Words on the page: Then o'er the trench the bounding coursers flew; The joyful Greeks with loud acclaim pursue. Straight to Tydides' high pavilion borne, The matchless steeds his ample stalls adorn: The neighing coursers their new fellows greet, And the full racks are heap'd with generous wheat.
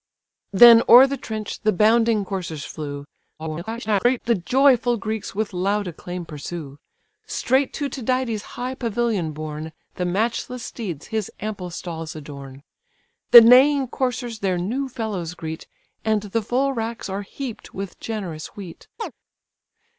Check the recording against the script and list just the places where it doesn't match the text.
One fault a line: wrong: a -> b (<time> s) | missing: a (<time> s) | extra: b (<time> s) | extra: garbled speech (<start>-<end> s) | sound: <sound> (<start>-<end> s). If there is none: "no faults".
extra: garbled speech (3.4-4.2 s)
sound: chirp (19.0-19.1 s)